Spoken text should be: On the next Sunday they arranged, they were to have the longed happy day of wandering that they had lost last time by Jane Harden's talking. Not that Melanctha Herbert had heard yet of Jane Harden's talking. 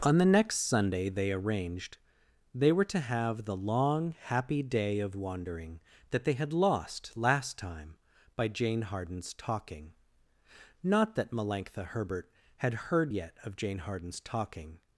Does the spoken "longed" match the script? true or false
false